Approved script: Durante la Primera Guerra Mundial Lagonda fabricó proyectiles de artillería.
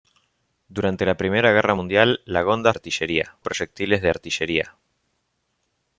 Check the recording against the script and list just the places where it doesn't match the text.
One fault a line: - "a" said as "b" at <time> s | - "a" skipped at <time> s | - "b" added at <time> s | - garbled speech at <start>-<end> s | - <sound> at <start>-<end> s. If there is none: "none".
- "fabricó" said as "artillería" at 2.7 s